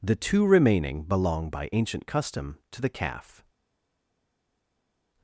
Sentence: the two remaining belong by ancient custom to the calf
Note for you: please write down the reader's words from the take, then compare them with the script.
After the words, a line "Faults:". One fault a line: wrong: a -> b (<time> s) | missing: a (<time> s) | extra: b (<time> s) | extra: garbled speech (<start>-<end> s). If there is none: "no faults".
the two remaining belong by ancient custom to the calf
Faults:
no faults